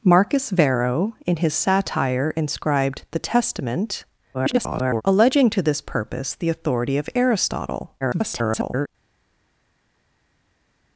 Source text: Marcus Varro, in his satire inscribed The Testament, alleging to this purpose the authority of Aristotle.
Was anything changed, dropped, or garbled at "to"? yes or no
no